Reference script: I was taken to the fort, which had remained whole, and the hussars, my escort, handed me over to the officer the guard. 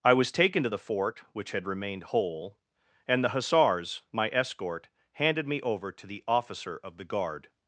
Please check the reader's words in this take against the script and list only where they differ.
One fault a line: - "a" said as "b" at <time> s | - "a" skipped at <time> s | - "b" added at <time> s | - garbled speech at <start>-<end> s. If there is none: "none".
- "of" added at 6.8 s